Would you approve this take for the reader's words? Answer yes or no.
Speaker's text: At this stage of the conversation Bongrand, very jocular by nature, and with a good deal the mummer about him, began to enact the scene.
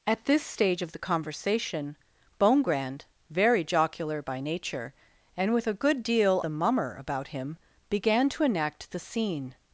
yes